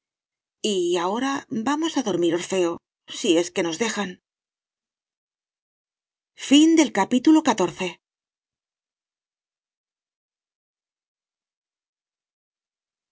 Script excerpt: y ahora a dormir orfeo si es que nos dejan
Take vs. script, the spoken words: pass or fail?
fail